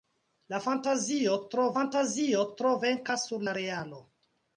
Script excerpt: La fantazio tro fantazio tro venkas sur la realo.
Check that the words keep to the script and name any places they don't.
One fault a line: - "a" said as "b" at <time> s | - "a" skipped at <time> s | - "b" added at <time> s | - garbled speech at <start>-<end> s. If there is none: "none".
none